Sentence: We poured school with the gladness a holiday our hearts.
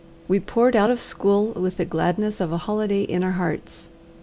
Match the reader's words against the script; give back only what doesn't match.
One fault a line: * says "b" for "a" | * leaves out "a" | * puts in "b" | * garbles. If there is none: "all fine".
* puts in "out of"
* puts in "of"
* puts in "in"